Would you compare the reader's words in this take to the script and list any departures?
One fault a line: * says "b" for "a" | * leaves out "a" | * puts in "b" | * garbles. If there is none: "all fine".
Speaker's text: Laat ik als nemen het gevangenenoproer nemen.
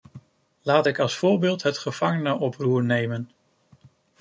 * says "voorbeeld" for "nemen"